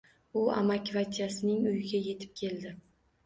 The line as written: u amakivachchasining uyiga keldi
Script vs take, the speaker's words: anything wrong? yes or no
yes